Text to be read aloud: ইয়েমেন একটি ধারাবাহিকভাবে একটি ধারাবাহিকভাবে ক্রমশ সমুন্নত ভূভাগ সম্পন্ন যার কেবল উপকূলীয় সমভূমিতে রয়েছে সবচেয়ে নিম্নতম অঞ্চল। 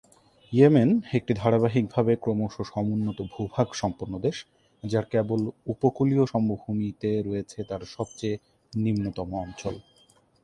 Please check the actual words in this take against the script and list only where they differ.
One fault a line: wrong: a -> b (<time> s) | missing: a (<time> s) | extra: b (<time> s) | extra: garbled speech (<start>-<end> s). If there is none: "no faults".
missing: একটি ধারাবাহিকভাবে (2.1 s)
extra: দেশ (4.2 s)
extra: তার (7.6 s)